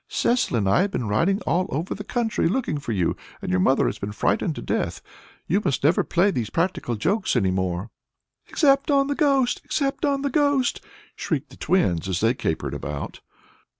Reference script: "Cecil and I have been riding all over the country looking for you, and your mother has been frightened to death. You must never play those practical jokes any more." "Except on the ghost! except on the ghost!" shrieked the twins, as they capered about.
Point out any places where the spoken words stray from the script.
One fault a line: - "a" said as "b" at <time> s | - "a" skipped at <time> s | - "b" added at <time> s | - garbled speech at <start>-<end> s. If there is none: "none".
- "those" said as "these" at 6.3 s